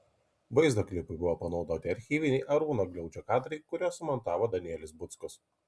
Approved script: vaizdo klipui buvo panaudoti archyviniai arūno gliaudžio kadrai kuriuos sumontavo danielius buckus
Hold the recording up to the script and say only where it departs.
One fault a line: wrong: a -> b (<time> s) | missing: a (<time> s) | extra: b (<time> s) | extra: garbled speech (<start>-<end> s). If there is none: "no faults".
no faults